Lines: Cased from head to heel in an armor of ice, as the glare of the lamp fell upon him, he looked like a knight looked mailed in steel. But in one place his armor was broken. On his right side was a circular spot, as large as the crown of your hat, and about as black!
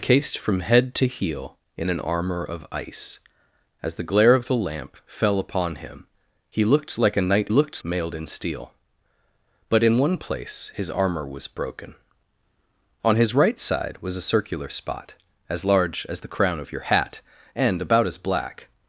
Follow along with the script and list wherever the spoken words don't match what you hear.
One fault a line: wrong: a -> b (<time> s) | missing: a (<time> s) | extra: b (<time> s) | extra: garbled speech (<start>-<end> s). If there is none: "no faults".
no faults